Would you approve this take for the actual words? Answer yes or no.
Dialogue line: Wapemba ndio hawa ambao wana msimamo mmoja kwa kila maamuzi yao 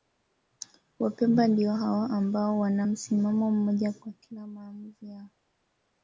yes